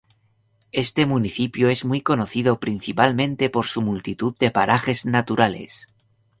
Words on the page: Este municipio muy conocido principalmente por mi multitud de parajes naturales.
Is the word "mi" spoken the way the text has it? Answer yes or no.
no